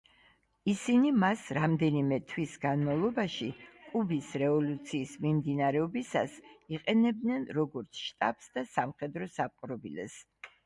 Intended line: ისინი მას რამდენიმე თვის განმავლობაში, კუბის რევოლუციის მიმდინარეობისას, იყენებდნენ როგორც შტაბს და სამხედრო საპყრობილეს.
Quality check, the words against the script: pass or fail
pass